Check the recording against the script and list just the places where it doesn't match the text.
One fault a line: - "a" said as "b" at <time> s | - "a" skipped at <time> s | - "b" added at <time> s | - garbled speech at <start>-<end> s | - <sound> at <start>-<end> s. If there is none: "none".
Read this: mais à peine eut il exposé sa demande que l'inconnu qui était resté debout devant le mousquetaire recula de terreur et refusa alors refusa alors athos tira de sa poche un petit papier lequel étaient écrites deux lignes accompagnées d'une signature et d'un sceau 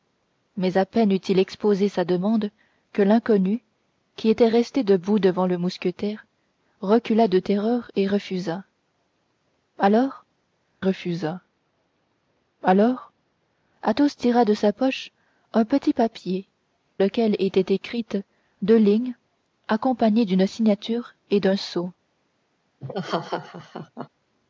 - laugh at 22.8-24.1 s